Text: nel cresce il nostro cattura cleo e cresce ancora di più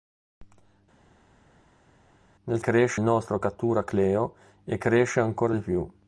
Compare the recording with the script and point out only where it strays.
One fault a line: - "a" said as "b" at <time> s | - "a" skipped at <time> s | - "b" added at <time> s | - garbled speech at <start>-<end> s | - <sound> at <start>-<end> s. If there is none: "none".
none